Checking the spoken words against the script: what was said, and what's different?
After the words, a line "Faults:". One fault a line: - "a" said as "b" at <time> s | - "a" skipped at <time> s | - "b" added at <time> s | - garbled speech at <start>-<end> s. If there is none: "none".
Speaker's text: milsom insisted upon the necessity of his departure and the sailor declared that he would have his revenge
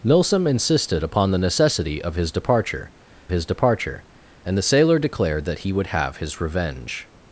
milsom insisted upon the necessity of his departure his departure and the sailor declared that he would have his revenge
Faults:
- "his departure" added at 3.3 s